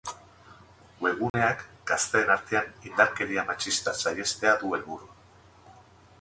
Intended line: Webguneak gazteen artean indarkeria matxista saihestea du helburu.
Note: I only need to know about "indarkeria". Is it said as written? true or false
true